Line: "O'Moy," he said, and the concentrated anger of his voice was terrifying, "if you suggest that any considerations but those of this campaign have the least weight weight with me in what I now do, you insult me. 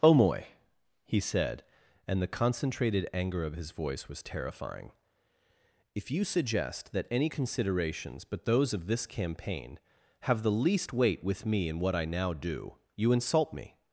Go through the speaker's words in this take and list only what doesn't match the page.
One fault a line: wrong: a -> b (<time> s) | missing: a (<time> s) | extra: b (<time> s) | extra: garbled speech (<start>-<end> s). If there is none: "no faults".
missing: weight (11.2 s)